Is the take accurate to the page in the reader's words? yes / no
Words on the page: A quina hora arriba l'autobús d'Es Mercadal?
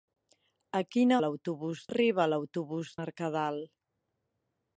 no